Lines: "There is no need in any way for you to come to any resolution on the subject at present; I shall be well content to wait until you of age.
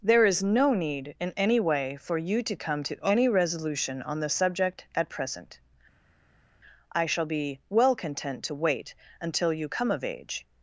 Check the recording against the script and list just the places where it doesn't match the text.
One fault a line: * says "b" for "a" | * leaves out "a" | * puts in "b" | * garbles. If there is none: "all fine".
* puts in "come"